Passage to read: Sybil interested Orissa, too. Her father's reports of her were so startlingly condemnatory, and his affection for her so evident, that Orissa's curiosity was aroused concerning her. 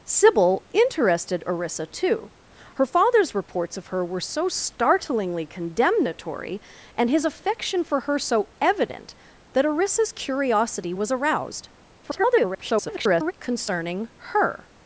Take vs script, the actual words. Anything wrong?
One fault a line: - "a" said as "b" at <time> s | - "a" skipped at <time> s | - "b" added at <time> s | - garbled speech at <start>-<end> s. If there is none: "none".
- garbled speech at 12.0-13.3 s